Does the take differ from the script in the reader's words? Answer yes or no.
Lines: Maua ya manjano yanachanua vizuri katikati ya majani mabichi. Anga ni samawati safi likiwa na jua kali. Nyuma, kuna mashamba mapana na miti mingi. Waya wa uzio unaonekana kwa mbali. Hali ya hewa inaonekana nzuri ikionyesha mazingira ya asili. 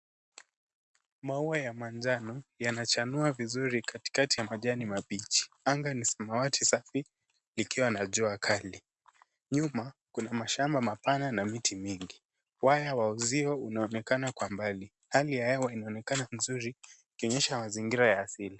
no